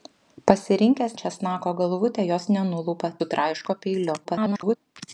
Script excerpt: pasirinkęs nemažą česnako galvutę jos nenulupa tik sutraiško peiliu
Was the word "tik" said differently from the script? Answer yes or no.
yes